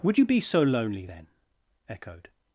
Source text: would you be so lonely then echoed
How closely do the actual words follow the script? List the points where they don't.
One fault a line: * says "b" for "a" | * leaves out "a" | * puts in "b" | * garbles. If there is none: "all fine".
all fine